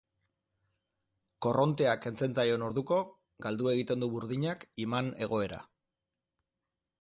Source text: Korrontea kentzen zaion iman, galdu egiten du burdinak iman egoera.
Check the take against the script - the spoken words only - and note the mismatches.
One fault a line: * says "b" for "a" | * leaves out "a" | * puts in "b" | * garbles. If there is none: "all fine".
* says "orduko" for "iman"